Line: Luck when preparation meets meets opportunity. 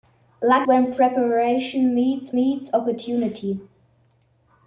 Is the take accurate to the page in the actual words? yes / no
yes